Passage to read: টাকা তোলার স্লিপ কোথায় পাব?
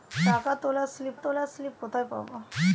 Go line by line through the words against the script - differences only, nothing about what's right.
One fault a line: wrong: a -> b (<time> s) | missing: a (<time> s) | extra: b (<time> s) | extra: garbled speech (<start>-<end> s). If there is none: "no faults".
extra: তোলার স্লিপ (1.2 s)